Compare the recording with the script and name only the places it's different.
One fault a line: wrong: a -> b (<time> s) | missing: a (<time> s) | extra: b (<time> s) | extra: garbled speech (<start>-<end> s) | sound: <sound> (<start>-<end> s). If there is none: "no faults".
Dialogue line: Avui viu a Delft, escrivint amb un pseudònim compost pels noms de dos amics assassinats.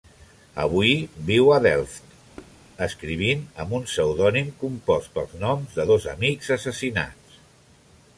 sound: thud (2.4-2.6 s)